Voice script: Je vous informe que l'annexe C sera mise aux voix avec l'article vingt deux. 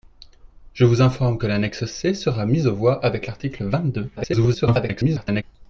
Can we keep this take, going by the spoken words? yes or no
no